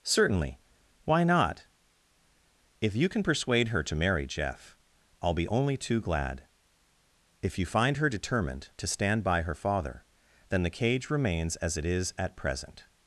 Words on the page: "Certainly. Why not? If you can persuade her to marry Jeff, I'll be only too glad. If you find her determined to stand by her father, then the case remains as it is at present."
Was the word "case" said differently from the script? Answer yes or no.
yes